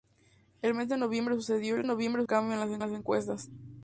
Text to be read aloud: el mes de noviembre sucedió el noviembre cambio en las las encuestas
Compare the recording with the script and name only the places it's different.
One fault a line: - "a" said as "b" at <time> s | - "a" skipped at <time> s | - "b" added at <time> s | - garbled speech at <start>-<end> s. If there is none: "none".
none